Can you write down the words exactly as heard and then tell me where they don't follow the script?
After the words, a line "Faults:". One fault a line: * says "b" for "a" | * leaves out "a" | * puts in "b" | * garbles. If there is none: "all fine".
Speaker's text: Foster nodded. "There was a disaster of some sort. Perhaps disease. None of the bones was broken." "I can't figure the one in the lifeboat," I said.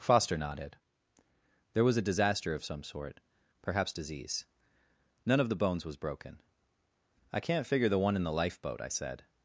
Foster nodded. "There was a disaster of some sort. Perhaps disease. None of the bones was broken." "I can't figure the one in the lifeboat," I said.
Faults:
all fine